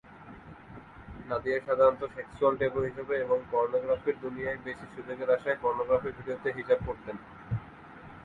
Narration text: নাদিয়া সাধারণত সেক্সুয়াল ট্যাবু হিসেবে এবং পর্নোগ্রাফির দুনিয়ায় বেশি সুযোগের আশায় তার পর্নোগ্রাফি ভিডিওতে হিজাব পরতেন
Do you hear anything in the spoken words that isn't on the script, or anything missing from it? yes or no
yes